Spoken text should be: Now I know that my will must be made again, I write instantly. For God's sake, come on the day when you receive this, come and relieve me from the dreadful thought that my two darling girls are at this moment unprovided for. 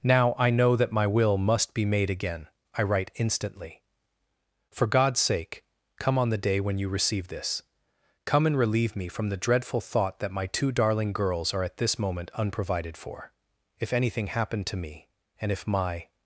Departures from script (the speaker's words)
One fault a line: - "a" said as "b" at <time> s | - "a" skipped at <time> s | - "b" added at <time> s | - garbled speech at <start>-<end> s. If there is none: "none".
- "If anything happened to me and if my" added at 13.8 s